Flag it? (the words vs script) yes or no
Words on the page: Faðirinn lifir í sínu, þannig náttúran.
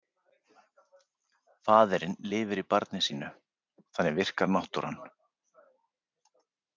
yes